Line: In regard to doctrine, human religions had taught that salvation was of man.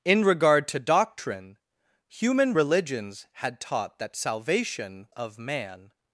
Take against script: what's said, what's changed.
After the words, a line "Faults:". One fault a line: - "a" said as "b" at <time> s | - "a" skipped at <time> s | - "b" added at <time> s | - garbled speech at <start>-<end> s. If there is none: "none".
In regard to doctrine, human religions had taught that salvation of man.
Faults:
- "was" skipped at 5.1 s